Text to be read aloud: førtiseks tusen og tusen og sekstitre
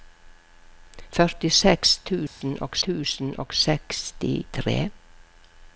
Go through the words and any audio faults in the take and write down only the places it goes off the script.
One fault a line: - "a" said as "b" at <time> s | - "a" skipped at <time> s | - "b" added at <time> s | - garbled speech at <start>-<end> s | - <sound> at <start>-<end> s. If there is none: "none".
- dropout at 2.3-2.4 s